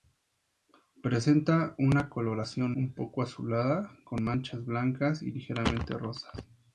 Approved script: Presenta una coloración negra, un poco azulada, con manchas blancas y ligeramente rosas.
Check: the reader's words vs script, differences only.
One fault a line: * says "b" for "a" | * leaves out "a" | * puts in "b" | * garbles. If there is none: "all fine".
* leaves out "negra"